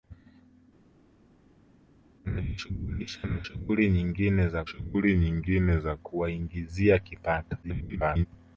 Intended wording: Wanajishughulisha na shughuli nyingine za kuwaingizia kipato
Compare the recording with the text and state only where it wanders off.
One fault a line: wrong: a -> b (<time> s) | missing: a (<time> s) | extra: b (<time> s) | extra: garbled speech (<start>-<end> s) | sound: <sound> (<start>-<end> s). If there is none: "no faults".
extra: shughuli nyingine za (4.7 s)
extra: garbled speech (7.6-8.3 s)